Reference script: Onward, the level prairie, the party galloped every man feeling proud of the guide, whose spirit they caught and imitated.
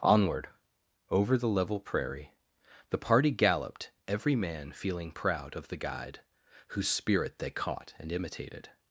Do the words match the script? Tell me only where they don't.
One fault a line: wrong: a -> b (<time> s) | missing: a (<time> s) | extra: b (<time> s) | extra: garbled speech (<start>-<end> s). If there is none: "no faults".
extra: over (1.1 s)